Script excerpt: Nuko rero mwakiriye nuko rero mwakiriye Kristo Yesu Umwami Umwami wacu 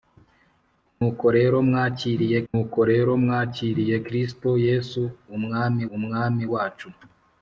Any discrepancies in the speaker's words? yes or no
no